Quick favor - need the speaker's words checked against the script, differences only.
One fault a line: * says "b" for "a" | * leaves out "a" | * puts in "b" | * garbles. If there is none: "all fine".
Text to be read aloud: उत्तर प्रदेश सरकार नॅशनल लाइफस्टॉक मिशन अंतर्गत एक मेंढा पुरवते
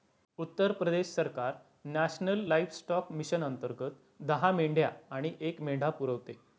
* puts in "दहा मेंढ्या आणि"